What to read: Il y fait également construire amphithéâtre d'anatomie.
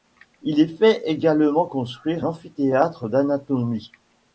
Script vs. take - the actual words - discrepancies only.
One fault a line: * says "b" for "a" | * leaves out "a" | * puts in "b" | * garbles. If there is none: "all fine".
all fine